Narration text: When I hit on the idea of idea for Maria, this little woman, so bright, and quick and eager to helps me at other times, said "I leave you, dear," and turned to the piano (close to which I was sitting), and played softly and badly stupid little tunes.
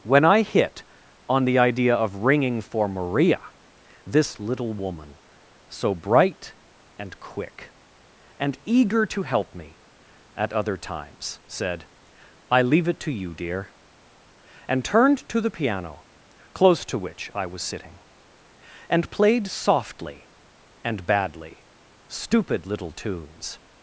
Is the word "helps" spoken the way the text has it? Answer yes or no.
no